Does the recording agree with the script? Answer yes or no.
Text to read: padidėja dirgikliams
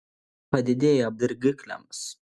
yes